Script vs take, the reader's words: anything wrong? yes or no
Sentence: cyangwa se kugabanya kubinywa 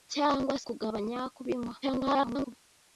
yes